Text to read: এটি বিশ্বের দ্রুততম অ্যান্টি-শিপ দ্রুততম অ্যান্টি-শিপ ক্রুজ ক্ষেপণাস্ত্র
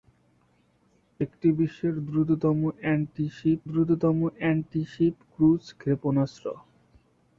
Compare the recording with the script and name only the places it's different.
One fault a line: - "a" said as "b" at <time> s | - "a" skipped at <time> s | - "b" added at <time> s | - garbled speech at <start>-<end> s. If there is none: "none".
none